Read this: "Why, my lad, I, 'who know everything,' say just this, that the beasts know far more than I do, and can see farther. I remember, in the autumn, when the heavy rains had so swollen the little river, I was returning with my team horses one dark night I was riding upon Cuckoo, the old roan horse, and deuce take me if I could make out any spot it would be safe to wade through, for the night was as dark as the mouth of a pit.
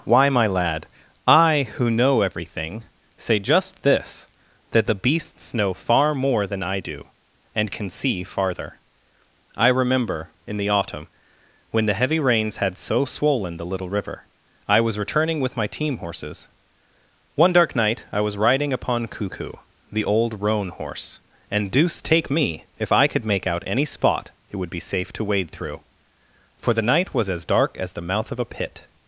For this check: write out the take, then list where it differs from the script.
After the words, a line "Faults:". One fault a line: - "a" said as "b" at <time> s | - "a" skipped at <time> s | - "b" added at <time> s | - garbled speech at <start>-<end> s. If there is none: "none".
"Why, my lad, I, 'who know everything,' say just this, that the beasts know far more than I do, and can see farther. I remember, in the autumn, when the heavy rains had so swollen the little river, I was returning with my team horses one dark night I was riding upon Cuckoo, the old roan horse, and deuce take me if I could make out any spot it would be safe to wade through, for the night was as dark as the mouth of a pit.
Faults:
none